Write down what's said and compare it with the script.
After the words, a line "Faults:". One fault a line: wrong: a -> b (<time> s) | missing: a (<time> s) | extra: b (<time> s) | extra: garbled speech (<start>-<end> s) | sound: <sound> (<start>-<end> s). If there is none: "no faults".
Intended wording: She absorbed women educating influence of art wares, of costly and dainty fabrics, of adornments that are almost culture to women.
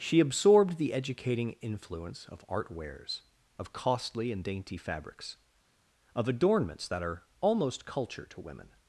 She absorbed the educating influence of art wares, of costly and dainty fabrics, of adornments that are almost culture to women.
Faults:
wrong: women -> the (0.8 s)